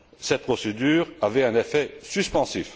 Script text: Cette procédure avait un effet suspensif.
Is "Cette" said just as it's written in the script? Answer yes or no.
yes